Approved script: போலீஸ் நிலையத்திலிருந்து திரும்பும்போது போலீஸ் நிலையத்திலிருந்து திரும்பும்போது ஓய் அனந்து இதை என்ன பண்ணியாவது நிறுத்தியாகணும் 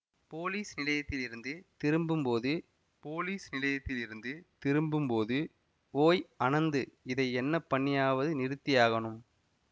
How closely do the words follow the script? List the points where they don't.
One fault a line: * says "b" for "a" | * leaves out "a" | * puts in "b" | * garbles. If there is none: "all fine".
all fine